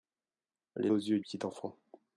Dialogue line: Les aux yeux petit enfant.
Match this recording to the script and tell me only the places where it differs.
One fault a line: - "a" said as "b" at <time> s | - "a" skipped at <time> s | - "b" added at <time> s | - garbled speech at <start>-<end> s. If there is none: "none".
none